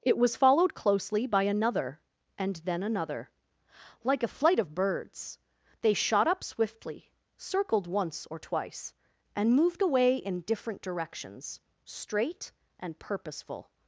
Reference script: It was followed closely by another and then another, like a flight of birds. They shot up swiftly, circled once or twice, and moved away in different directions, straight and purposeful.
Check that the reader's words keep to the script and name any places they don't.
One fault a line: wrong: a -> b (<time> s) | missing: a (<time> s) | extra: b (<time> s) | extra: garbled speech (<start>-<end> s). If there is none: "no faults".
no faults